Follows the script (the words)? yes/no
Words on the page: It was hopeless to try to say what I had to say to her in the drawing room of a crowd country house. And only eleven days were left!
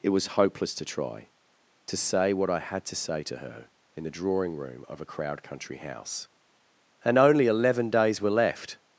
yes